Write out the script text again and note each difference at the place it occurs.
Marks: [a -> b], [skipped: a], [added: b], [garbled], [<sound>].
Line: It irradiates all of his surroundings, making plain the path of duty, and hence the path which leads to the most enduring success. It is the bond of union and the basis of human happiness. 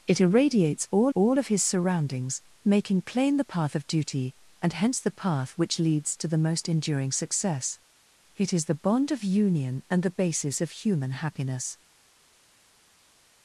It irradiates all [added: all] of his surroundings, making plain the path of duty, and hence the path which leads to the most enduring success. It is the bond of union and the basis of human happiness.